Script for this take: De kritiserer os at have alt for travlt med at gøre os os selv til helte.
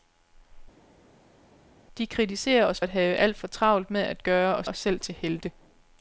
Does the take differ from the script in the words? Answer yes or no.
no